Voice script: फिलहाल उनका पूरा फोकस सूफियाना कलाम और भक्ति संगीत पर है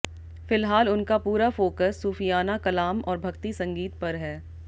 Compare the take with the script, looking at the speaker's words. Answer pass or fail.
pass